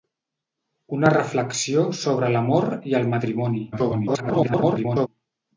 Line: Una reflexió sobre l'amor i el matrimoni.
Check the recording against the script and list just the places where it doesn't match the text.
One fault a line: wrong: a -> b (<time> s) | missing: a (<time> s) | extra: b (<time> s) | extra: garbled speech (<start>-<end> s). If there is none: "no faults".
extra: garbled speech (3.7-5.1 s)